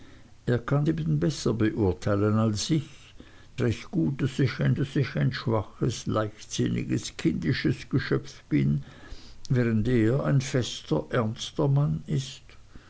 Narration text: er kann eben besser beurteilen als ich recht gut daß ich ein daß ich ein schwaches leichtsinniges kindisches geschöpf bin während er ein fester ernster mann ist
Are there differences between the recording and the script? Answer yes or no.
no